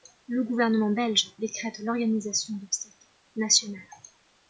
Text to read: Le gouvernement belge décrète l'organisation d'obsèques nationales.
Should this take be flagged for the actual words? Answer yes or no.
no